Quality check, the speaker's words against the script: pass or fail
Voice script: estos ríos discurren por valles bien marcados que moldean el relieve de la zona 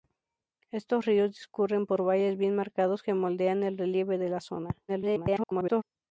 fail